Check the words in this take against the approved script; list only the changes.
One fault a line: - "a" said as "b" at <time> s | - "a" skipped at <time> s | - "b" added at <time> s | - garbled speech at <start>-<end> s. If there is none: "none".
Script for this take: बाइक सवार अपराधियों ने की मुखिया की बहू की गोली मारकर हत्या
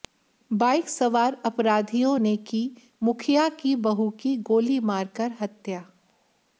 none